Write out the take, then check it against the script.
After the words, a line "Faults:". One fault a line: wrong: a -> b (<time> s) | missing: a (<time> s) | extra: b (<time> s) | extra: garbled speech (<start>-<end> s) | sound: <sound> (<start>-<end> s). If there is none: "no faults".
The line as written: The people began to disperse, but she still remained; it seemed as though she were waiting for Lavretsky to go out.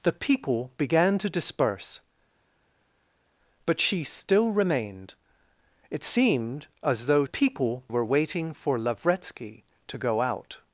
The people began to disperse, but she still remained; it seemed as though people were waiting for Lavretsky to go out.
Faults:
wrong: she -> people (7.2 s)